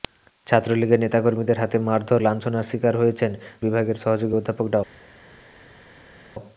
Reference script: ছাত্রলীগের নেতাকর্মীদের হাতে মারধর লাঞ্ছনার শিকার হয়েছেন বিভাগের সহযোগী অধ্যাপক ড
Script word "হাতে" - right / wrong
right